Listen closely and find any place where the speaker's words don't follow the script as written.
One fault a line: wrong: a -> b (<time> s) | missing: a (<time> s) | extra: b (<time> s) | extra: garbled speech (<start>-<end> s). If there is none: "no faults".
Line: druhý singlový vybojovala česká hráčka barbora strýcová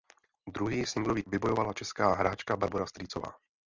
no faults